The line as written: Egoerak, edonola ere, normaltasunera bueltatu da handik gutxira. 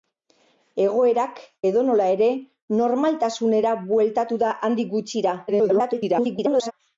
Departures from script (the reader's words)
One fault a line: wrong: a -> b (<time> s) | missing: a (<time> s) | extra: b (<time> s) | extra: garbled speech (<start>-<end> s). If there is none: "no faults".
extra: garbled speech (5.5-6.7 s)